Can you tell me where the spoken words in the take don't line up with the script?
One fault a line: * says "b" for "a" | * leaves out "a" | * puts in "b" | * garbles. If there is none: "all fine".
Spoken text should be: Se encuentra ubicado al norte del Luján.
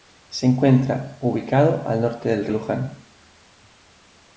all fine